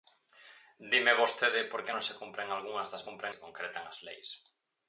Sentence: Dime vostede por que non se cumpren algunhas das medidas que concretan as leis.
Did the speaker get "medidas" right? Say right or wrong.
wrong